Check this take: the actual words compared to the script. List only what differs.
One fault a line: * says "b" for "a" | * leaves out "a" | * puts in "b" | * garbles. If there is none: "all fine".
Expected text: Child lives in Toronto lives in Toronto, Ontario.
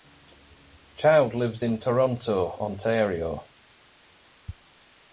* leaves out "lives in Toronto"